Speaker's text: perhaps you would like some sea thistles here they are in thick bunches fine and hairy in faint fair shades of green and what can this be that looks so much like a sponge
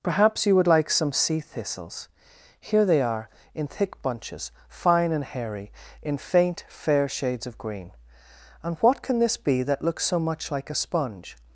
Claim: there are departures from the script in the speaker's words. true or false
false